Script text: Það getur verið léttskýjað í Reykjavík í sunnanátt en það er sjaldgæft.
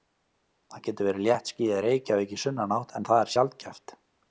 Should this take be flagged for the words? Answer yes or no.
no